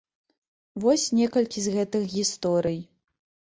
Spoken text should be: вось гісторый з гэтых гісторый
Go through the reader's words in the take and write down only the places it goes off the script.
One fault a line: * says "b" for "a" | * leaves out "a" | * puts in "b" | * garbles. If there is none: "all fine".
* says "некалькі" for "гісторый"